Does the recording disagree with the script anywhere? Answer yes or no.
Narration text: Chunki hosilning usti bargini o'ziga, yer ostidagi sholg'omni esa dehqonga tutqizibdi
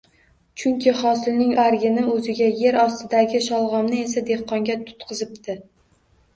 yes